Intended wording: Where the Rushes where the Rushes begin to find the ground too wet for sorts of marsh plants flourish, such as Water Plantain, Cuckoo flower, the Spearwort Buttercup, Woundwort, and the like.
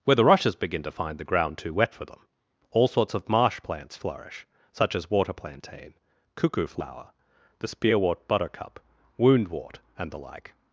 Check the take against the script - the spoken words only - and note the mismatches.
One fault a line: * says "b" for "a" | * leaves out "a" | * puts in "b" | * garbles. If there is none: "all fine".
* leaves out "where the Rushes"
* puts in "them all"